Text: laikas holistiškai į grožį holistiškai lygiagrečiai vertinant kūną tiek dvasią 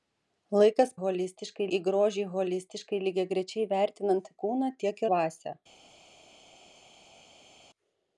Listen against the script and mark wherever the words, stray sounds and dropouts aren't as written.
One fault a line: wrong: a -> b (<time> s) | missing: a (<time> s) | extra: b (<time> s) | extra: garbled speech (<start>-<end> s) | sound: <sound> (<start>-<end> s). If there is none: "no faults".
no faults